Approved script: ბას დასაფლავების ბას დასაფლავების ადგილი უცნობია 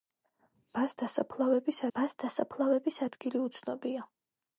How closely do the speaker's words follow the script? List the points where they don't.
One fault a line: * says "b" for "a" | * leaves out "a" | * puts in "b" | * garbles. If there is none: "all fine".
all fine